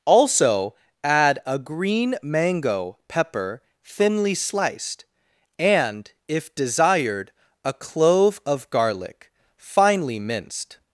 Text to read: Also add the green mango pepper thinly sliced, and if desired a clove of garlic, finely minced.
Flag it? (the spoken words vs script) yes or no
yes